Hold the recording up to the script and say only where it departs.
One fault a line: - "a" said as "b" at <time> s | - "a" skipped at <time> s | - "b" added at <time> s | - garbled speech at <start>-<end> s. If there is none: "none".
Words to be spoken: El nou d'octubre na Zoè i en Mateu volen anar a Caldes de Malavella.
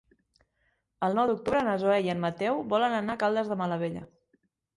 none